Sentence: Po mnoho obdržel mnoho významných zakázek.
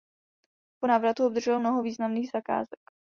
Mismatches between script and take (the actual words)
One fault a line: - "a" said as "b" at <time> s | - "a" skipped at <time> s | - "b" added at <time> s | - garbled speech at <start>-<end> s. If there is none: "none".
- "mnoho" said as "návratu" at 0.9 s